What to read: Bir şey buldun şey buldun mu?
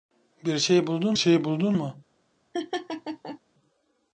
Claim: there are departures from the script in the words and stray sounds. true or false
true